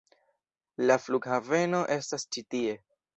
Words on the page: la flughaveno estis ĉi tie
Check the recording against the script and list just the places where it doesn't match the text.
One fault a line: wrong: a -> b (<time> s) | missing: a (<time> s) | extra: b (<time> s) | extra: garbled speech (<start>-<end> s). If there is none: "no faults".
wrong: estis -> estas (2.0 s)